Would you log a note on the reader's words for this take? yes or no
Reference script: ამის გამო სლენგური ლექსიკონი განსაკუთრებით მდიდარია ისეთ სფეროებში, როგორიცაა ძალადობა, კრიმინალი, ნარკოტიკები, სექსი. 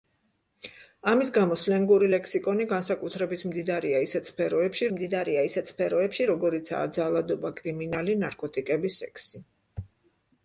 yes